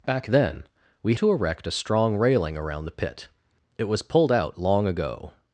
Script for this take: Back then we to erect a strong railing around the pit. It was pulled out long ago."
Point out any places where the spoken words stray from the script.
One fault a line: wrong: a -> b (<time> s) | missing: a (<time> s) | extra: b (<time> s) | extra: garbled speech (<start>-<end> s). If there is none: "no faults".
no faults